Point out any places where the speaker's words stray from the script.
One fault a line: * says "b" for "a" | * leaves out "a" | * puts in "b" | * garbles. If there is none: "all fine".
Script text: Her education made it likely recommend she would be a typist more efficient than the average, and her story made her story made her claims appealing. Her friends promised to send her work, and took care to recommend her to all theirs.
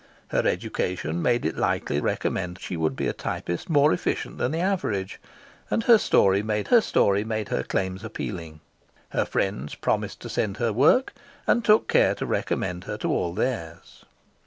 all fine